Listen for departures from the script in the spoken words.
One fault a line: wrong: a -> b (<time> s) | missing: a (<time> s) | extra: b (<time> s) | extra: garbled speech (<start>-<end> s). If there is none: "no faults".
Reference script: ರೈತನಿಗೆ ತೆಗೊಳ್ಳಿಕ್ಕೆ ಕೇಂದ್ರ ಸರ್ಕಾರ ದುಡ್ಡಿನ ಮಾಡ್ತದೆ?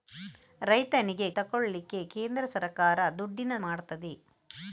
no faults